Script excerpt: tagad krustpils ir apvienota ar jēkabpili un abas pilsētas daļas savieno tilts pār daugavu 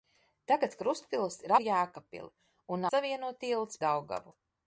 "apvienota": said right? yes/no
no